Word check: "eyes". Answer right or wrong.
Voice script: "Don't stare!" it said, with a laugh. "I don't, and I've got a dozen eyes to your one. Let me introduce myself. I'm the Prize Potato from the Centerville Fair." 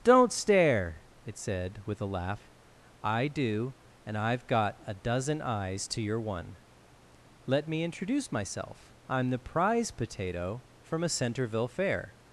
right